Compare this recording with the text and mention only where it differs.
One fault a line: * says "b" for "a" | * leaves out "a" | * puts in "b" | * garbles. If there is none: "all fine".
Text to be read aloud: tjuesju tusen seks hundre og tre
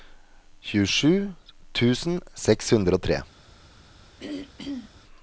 all fine